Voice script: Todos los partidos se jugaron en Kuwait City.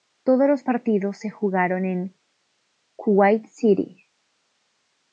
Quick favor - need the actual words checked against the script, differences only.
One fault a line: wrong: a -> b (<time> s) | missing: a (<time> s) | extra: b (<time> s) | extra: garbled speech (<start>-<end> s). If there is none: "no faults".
no faults